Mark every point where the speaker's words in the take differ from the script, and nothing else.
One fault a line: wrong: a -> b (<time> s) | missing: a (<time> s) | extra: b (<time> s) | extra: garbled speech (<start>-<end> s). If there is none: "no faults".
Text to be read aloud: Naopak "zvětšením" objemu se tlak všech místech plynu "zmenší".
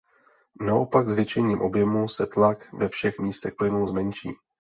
extra: ve (2.7 s)